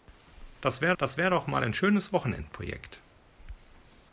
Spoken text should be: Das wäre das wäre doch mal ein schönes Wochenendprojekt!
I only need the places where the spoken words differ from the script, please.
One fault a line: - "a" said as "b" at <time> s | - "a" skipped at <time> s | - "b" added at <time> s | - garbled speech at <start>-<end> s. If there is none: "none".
none